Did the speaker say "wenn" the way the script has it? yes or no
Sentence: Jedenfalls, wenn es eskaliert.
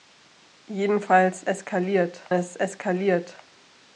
no